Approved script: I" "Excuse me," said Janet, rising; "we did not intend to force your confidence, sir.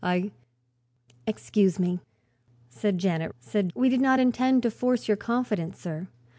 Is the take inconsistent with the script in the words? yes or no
yes